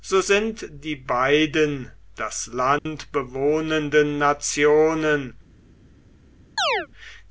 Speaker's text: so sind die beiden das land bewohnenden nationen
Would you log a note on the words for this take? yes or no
no